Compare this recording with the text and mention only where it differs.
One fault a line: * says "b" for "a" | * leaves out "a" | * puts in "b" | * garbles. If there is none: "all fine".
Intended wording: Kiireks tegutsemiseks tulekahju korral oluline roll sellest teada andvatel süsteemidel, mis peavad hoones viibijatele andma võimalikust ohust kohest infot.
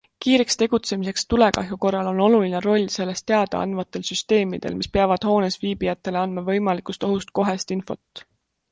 * puts in "on"